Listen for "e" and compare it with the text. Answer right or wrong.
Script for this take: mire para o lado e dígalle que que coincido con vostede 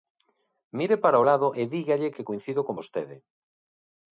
right